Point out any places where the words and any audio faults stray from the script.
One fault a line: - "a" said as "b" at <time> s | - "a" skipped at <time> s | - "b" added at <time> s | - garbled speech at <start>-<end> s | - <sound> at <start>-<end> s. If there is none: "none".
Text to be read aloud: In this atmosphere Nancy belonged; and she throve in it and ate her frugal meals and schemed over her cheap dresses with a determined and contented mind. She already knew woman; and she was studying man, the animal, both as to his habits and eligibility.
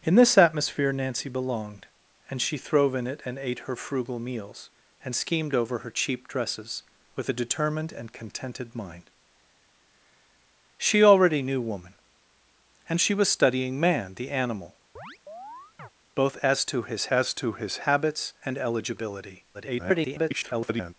- chirp at 15.0-15.9 s
- "as to his" added at 17.1 s
- garbled speech at 19.5-20.9 s